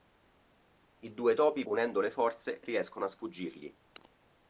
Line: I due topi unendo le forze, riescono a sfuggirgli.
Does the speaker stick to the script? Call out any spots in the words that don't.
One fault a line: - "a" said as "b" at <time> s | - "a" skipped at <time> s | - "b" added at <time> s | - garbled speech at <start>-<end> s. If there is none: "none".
none